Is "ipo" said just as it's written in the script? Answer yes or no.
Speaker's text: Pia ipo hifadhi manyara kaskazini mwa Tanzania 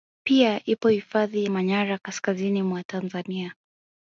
yes